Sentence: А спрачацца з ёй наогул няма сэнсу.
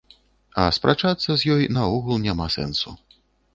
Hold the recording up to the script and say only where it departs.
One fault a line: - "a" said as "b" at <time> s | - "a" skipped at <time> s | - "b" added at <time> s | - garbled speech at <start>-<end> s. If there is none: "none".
none